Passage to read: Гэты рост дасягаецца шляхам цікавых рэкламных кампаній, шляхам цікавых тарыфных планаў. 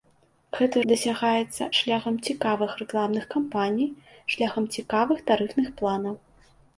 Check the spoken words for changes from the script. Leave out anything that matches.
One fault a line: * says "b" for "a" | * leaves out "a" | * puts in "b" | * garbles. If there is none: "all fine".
* leaves out "рост"